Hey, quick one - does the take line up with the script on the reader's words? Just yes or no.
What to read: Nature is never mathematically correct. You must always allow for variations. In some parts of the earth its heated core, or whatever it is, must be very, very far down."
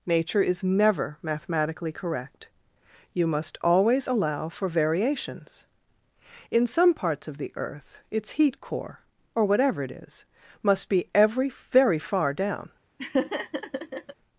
no